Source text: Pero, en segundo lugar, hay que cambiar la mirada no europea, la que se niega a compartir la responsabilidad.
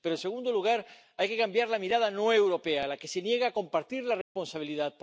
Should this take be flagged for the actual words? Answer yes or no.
no